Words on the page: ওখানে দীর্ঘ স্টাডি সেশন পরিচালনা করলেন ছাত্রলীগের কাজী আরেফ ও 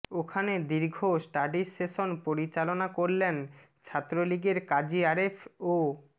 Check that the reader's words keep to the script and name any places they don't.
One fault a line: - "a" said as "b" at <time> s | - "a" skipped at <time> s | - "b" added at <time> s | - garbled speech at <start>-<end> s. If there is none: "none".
none